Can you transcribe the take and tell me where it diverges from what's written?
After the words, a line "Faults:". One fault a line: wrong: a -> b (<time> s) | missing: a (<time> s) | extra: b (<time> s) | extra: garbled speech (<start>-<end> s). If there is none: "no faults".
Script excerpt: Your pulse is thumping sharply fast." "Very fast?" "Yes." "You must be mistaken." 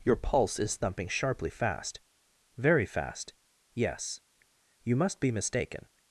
Your pulse is thumping sharply fast." "Very fast?" "Yes." "You must be mistaken."
Faults:
no faults